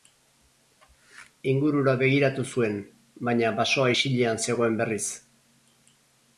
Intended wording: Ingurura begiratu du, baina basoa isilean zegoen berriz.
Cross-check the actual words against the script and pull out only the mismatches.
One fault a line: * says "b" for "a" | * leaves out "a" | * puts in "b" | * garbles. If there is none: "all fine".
* says "zuen" for "du"